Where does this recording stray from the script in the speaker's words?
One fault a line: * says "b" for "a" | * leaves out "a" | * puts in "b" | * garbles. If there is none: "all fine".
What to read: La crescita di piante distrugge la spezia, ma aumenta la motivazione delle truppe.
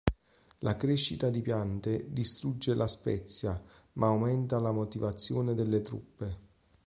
all fine